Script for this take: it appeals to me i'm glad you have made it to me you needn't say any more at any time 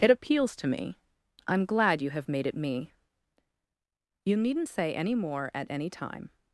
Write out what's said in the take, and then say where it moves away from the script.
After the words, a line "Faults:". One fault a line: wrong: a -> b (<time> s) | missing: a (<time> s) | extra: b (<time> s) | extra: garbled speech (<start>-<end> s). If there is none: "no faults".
it appeals to me i'm glad you have made it me you needn't say any more at any time
Faults:
missing: to (2.5 s)